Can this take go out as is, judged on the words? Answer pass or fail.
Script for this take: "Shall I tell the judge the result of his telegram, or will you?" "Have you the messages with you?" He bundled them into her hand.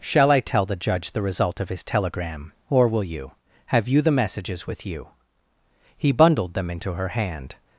pass